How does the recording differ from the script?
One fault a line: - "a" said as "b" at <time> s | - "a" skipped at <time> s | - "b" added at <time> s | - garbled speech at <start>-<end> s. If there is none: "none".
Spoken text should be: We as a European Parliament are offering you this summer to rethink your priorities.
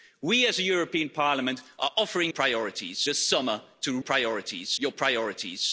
- "you" said as "priorities" at 2.3 s
- "rethink" said as "priorities" at 4.0 s